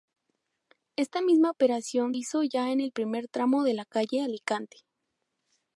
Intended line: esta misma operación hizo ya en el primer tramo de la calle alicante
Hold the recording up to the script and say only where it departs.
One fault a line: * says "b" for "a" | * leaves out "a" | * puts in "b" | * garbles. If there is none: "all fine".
all fine